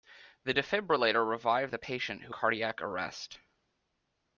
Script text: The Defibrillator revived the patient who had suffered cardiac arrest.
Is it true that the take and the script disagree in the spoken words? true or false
true